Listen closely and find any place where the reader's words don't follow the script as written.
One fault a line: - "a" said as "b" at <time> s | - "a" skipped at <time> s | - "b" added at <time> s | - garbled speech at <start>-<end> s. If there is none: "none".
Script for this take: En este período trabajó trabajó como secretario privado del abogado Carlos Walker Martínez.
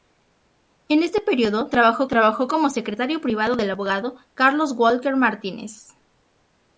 none